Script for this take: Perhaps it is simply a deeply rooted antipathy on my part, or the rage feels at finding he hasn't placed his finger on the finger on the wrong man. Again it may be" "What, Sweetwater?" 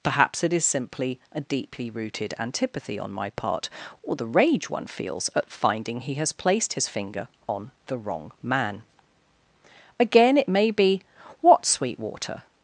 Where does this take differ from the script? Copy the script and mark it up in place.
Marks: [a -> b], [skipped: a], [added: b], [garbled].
Perhaps it is simply a deeply rooted antipathy on my part, or the rage [added: one] feels at finding he [hasn't -> has] placed his finger on the [skipped: finger on the] wrong man. Again it may be" "What, Sweetwater?"